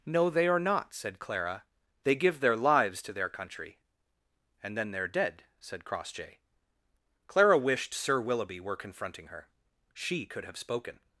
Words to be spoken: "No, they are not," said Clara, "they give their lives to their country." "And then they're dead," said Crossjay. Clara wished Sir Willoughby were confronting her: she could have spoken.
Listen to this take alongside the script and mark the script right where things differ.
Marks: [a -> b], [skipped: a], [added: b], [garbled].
"No, they are not," said Clara, "they give their lives to their country." "And then they're dead," said Crossjay. Clara wished Sir Willoughby were confronting her: she could have spoken.